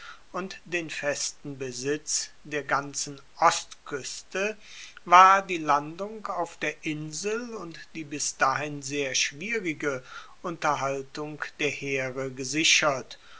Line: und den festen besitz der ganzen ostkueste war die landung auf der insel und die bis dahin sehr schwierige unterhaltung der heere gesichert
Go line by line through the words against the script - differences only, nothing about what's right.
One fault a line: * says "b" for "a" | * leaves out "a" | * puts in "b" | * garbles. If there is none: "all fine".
all fine